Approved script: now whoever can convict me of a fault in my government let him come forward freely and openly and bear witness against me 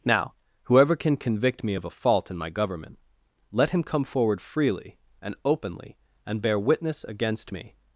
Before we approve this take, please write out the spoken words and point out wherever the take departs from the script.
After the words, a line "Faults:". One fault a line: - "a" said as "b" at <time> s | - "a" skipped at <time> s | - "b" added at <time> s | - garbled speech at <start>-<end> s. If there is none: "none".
now whoever can convict me of a fault in my government let him come forward freely and openly and bear witness against me
Faults:
none